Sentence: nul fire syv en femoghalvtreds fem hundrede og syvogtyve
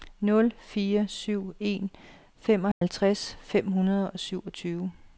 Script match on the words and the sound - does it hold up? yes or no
no